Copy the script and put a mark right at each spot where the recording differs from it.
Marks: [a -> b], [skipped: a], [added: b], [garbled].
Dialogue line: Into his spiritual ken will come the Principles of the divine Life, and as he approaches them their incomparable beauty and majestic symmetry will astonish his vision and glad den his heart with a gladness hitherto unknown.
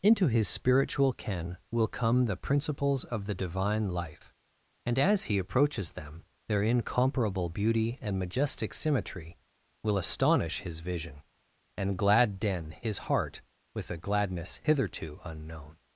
Into his spiritual ken will come the Principles of the divine Life, and as he approaches them their incomparable beauty and majestic symmetry will astonish his vision and glad den his heart with a gladness hitherto unknown.